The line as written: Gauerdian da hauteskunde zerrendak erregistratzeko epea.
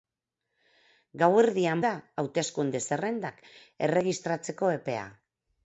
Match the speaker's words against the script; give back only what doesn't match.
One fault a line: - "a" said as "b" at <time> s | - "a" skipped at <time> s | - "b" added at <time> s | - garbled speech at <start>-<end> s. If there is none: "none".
none